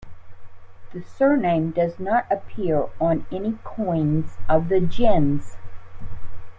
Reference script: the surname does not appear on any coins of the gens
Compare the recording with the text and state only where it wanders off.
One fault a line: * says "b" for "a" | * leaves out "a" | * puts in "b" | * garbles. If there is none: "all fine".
all fine